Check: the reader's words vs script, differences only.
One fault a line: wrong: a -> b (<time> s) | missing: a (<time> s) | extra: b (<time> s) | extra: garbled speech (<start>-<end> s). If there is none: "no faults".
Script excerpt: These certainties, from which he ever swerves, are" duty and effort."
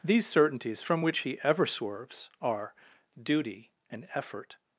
no faults